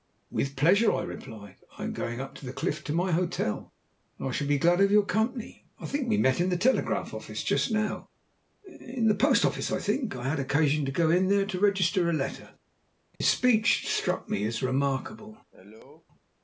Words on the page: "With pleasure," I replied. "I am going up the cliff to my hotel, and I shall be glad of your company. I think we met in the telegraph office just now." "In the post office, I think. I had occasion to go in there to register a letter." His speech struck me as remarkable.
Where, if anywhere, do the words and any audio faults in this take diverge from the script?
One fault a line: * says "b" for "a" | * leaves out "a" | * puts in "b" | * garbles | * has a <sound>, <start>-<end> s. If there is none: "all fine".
* has a dropout, 13.2-13.2 s
* has a cough, 15.5-16.1 s